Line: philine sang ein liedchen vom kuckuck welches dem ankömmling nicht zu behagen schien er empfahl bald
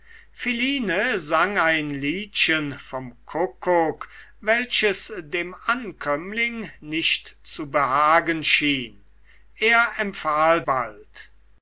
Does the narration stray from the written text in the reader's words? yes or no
no